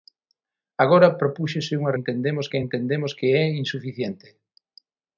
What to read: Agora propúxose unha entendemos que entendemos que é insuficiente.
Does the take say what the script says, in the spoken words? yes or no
yes